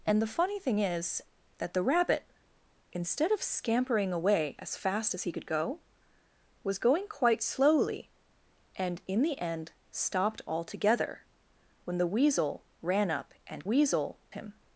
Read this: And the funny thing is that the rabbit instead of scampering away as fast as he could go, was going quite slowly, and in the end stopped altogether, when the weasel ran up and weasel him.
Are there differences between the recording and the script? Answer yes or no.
no